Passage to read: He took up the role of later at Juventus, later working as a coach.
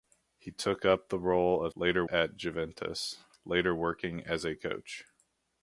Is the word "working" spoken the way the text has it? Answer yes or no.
yes